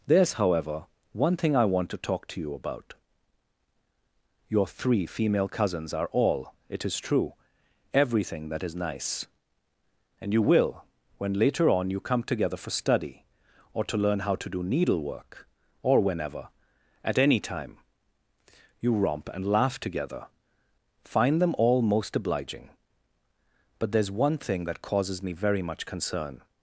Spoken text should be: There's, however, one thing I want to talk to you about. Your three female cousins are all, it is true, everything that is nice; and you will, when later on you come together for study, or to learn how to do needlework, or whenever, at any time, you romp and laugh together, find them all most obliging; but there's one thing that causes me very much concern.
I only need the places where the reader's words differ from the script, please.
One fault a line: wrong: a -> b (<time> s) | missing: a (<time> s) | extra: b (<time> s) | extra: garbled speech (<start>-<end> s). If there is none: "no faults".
no faults